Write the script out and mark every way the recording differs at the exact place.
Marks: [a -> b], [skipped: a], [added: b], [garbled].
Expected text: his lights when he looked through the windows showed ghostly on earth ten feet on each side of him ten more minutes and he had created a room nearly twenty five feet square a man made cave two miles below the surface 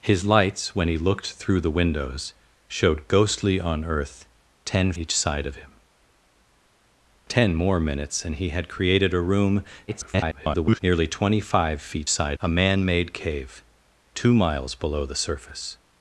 his lights when he looked through the windows showed ghostly on earth ten [skipped: feet on] each side of him ten more minutes and he had created a room [garbled] nearly twenty five feet [square -> side] a man made cave two miles below the surface